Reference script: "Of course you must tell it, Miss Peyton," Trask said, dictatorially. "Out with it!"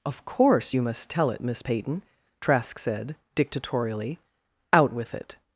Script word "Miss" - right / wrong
right